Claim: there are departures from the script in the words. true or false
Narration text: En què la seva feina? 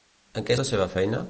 false